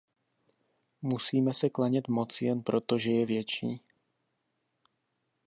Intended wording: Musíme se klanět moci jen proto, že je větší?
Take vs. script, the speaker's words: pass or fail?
pass